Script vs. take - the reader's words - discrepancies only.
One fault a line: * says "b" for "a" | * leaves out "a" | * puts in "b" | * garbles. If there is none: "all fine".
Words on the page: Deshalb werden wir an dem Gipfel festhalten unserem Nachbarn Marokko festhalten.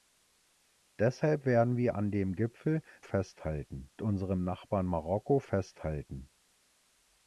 all fine